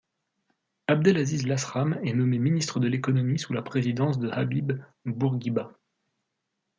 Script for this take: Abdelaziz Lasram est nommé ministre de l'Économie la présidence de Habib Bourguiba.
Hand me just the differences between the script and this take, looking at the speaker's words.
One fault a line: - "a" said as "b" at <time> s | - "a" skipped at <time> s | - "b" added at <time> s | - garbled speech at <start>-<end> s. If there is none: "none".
- "sous" added at 3.4 s